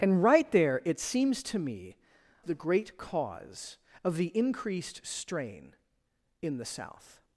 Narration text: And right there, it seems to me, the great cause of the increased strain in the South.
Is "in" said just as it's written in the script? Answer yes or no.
yes